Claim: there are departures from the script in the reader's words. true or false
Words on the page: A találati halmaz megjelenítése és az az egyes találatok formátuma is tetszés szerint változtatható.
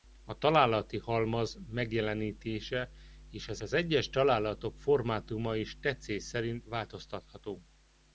false